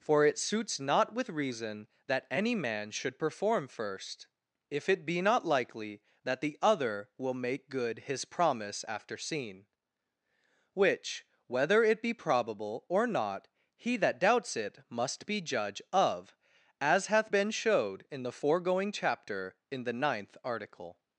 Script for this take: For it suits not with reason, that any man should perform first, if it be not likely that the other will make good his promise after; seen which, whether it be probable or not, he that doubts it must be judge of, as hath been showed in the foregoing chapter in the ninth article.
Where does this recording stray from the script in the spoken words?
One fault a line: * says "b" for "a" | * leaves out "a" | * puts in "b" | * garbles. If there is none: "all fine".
all fine